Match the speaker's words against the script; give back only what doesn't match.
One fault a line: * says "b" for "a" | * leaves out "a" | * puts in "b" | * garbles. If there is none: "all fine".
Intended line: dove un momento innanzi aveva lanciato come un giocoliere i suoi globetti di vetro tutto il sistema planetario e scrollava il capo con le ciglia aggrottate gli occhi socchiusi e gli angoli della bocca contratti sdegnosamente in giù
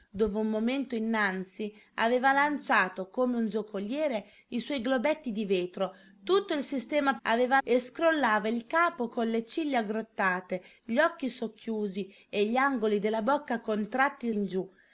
* says "aveva" for "planetario"
* leaves out "sdegnosamente"